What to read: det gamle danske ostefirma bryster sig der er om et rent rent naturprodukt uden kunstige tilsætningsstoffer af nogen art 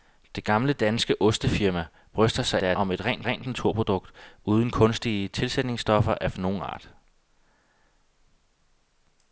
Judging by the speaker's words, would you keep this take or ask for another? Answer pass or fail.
pass